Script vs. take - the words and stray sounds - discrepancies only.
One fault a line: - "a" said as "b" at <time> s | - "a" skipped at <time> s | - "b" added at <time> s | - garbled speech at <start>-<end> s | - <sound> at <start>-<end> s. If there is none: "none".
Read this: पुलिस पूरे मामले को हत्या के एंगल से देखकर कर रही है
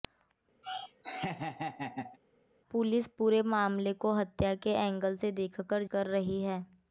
- laugh at 0.6-2.2 s